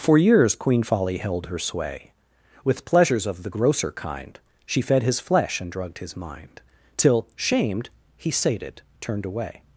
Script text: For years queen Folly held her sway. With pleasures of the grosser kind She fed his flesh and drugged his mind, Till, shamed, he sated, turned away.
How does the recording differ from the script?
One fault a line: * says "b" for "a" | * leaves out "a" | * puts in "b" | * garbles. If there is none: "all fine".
all fine